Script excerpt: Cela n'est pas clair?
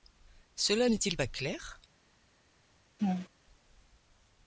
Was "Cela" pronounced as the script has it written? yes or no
yes